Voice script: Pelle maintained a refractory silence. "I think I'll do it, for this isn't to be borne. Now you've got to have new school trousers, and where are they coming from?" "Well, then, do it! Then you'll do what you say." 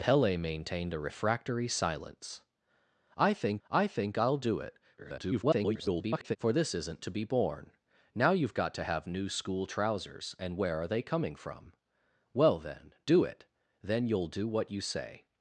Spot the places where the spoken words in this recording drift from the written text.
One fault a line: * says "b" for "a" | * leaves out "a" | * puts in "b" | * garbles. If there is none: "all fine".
* puts in "I think"
* garbles